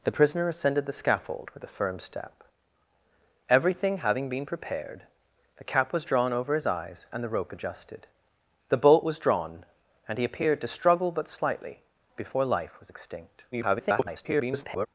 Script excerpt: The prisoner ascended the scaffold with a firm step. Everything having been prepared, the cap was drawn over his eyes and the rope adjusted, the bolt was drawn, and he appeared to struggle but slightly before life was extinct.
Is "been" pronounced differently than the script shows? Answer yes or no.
no